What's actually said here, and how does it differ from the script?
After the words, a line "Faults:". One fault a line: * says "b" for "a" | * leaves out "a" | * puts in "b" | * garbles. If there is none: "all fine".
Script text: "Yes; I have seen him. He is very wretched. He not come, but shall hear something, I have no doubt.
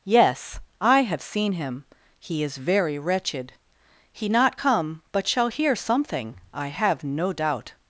"Yes; I have seen him. He is very wretched. He not come, but shall hear something, I have no doubt.
Faults:
all fine